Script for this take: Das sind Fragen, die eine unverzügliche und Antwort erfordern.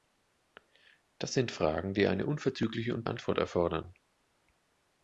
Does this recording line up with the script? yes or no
yes